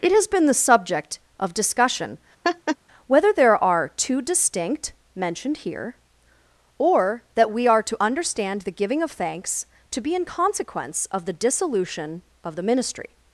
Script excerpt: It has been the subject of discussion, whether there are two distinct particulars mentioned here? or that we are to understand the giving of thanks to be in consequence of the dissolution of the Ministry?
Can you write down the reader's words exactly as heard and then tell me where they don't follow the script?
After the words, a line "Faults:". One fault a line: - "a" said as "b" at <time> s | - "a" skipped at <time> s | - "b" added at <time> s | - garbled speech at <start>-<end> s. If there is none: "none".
It has been the subject of discussion, whether there are two distinct mentioned here? or that we are to understand the giving of thanks to be in consequence of the dissolution of the Ministry?
Faults:
- "particulars" skipped at 4.9 s